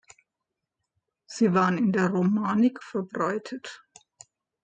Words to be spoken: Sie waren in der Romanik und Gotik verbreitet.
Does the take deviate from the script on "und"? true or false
true